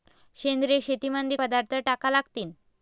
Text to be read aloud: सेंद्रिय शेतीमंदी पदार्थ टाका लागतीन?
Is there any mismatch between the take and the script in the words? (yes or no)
no